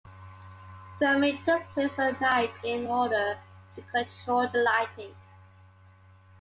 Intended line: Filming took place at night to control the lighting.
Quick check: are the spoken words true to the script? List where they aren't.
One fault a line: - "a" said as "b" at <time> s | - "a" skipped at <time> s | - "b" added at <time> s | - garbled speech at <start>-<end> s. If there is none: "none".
- "in order" added at 2.6 s